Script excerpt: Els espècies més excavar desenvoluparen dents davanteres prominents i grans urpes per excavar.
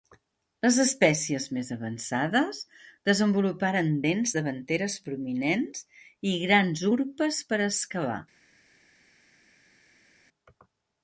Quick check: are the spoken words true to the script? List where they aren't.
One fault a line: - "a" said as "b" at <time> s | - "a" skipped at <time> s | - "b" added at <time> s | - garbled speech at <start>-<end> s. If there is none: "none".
- "Els" said as "Les" at 0.7 s
- "excavar" said as "avançades" at 1.8 s